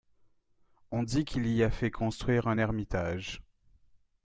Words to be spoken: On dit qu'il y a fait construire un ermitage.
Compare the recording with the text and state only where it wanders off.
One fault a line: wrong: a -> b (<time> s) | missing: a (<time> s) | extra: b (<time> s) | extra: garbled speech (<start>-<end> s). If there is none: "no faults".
no faults